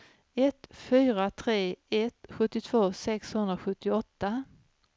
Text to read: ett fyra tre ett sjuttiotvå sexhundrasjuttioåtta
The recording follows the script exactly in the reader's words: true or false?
true